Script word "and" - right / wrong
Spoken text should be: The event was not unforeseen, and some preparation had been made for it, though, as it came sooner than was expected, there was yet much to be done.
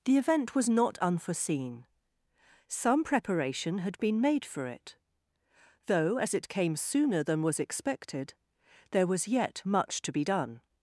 wrong